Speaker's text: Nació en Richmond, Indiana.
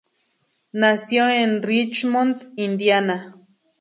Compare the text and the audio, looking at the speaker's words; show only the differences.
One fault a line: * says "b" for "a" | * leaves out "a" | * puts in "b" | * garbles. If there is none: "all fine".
all fine